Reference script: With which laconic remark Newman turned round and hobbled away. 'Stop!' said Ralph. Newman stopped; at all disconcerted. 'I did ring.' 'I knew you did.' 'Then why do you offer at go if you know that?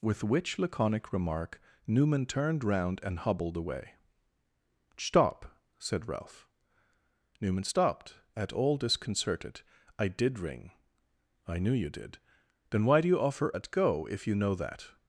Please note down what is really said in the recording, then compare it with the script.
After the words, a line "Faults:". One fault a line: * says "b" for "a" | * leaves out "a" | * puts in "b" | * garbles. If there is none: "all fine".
With which laconic remark Newman turned round and hobbled away. 'Stop!' said Ralph. Newman stopped; at all disconcerted. 'I did ring.' 'I knew you did.' 'Then why do you offer at go if you know that?
Faults:
all fine